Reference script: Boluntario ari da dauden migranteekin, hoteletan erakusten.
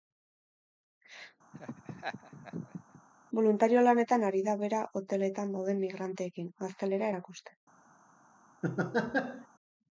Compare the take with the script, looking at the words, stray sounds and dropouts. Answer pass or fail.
fail